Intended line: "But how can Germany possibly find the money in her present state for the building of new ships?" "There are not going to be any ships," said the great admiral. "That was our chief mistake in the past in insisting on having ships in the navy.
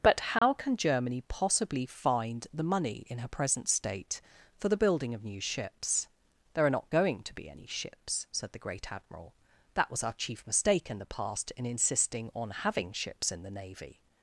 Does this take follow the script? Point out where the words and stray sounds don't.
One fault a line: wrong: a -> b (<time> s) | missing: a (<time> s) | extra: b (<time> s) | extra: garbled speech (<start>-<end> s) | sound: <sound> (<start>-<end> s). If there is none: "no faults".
sound: dropout (0.4-0.4 s)